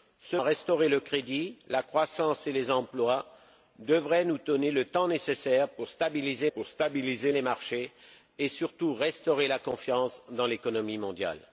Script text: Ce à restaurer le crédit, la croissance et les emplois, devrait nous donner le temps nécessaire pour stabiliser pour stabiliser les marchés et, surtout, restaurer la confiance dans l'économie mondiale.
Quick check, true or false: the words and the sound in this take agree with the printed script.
true